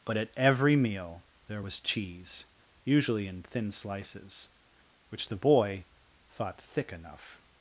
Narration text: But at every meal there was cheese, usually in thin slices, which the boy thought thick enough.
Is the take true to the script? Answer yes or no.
yes